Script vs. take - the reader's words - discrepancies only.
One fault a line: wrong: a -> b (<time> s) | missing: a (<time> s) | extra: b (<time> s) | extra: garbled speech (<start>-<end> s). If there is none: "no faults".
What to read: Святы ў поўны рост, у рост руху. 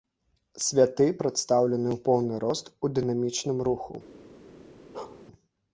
extra: прадстаўлены (1.2 s)
wrong: рост -> дынамічным (3.0 s)